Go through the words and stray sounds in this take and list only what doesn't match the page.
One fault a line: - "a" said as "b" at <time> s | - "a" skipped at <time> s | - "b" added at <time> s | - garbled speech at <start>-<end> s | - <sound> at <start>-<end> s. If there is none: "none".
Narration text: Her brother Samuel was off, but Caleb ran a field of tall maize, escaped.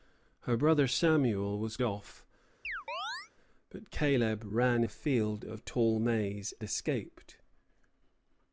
- chirp at 2.6-3.3 s